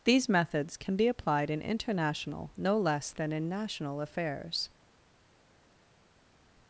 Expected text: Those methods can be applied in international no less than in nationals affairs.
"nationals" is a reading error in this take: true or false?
true